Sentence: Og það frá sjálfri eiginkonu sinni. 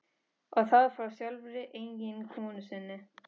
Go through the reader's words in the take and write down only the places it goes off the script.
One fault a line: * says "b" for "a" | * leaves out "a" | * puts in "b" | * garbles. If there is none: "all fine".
all fine